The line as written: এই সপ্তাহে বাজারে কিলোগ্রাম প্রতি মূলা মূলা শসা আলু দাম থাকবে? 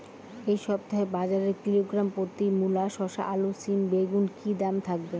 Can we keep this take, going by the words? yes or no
no